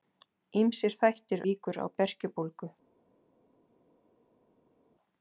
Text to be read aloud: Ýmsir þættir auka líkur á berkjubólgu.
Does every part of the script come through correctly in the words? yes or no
no